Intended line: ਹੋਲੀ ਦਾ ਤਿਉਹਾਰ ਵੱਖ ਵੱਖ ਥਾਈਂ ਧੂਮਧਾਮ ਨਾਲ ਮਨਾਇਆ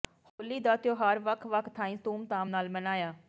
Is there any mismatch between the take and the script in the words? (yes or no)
no